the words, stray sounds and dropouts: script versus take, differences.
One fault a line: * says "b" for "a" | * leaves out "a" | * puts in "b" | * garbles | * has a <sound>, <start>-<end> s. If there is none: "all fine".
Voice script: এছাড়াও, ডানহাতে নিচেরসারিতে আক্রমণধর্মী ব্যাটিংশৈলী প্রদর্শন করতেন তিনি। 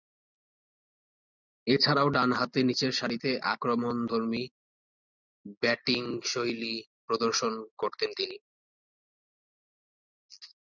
all fine